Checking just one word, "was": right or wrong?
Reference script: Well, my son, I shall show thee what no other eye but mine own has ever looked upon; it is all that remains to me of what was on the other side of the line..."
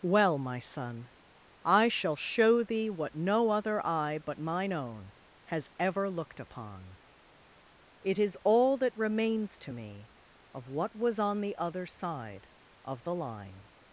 right